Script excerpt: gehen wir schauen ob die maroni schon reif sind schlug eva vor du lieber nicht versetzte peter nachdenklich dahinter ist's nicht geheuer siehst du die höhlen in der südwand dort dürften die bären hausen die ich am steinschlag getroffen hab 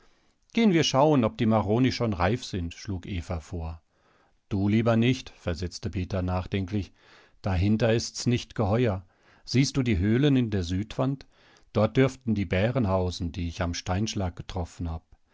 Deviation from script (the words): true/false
false